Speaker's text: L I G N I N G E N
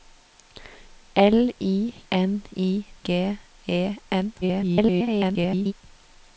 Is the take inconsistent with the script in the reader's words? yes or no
yes